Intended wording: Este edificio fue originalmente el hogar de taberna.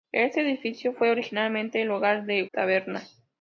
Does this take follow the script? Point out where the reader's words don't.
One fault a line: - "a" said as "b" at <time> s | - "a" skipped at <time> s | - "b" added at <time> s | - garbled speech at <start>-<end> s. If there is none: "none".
none